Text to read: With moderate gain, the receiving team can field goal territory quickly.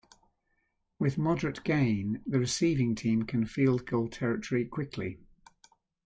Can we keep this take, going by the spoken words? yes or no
yes